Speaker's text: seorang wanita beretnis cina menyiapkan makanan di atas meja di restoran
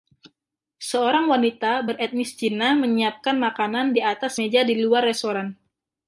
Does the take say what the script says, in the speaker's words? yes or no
no